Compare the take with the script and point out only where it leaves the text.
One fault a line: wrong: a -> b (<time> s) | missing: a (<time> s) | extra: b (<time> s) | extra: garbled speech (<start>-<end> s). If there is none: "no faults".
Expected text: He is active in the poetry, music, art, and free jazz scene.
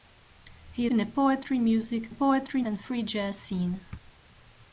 missing: is active (0.9 s)
wrong: art -> poetry (2.1 s)